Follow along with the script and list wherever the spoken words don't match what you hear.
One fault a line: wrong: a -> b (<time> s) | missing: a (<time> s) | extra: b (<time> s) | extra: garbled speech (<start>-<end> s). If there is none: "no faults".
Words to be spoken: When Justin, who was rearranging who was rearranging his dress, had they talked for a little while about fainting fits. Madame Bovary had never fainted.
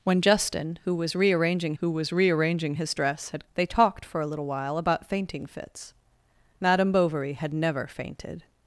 no faults